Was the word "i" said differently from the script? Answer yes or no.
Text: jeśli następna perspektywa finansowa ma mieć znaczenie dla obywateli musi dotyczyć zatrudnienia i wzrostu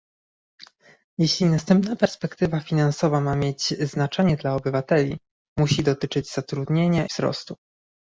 yes